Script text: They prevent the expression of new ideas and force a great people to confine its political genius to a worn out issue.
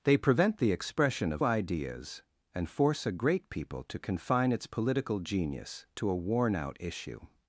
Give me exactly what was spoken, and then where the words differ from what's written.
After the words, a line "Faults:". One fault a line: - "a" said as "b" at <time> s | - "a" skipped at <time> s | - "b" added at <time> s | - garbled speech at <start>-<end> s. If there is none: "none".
They prevent the expression of ideas and force a great people to confine its political genius to a worn out issue.
Faults:
- "new" skipped at 1.4 s